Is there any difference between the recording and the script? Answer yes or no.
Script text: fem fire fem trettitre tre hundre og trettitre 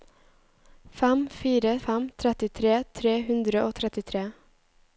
no